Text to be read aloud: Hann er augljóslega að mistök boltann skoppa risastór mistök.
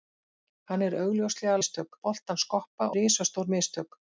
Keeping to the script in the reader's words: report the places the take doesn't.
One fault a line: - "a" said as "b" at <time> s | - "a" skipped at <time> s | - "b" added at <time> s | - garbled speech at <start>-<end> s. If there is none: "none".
none